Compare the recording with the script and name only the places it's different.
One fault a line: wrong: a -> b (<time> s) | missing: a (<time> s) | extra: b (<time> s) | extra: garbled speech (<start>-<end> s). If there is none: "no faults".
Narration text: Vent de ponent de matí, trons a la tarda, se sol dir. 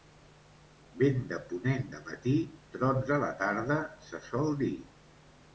no faults